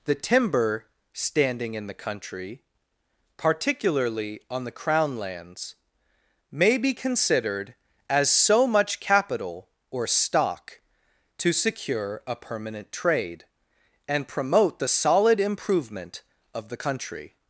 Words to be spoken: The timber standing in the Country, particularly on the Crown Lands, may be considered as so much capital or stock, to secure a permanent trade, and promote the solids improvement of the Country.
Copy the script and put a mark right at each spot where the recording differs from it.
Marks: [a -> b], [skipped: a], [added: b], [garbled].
The timber standing in the Country, particularly on the Crown Lands, may be considered as so much capital or stock, to secure a permanent trade, and promote the [solids -> solid] improvement of the Country.